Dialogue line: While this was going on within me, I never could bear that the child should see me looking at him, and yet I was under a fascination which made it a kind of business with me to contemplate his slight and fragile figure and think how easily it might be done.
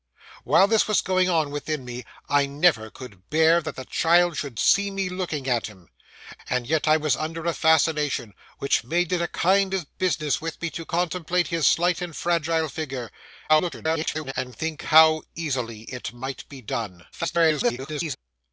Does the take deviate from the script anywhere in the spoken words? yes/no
yes